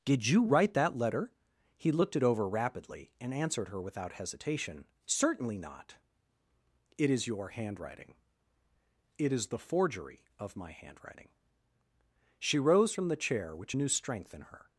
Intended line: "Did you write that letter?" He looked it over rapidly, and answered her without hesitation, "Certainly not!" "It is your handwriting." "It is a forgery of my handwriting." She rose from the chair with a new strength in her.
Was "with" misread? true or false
true